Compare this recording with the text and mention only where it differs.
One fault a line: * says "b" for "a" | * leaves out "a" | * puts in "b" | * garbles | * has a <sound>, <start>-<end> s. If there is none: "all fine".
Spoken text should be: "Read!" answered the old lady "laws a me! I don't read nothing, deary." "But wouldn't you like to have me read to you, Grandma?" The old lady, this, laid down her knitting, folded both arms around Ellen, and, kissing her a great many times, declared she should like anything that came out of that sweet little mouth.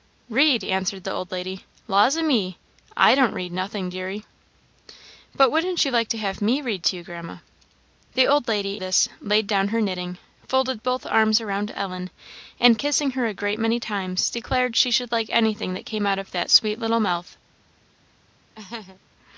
* has a laugh, 18.5-19.0 s